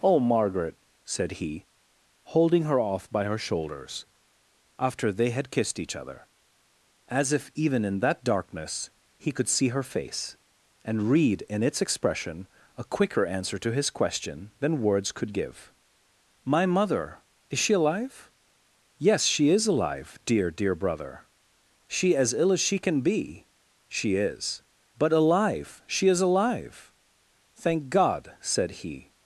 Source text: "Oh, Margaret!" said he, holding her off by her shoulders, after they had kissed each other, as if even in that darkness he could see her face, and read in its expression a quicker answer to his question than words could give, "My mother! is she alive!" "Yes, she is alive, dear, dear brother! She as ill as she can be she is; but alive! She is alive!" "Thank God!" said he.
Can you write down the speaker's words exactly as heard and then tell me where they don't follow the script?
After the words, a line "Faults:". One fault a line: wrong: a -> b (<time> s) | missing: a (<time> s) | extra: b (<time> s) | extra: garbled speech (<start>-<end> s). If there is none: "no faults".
"Oh, Margaret!" said he, holding her off by her shoulders, after they had kissed each other, as if even in that darkness he could see her face, and read in its expression a quicker answer to his question than words could give, "My mother! is she alive!" "Yes, she is alive, dear, dear brother! She as ill as she can be she is; but alive! She is alive!" "Thank God!" said he.
Faults:
no faults